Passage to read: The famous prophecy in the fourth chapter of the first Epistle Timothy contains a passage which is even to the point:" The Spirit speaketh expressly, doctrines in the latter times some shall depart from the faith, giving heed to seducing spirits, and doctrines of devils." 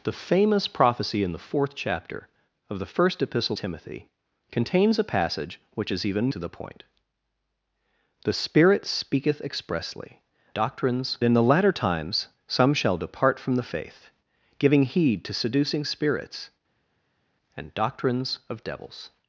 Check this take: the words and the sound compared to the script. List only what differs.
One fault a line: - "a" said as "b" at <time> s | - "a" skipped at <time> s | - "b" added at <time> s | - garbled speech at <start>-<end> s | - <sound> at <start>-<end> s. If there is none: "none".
none